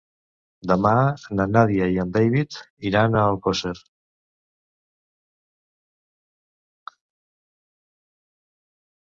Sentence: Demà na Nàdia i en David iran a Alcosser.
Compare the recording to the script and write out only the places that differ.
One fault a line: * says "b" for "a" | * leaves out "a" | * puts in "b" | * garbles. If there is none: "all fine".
all fine